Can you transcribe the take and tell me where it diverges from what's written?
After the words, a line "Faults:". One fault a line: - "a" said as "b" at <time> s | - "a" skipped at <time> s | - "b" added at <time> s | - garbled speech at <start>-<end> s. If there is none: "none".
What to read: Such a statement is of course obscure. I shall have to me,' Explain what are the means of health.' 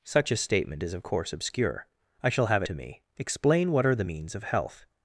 Such a statement is of course obscure. I shall have to me,' Explain what are the means of health.'
Faults:
none